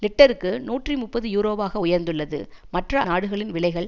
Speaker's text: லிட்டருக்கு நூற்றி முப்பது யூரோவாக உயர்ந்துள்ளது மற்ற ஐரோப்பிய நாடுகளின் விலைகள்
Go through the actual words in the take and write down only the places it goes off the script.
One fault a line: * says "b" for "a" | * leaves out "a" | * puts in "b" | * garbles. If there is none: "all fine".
* leaves out "ஐரோப்பிய"